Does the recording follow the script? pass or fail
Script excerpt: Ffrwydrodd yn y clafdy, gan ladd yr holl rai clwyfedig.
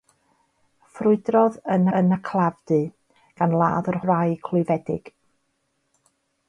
fail